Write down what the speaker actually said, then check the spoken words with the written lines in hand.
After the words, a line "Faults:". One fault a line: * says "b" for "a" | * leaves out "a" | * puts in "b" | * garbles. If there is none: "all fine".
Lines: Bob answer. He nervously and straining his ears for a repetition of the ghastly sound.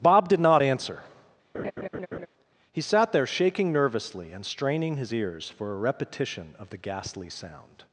Bob did not answer. He sat there shaking nervously and straining his ears for a repetition of the ghastly sound.
Faults:
* puts in "did not"
* puts in "sat there shaking"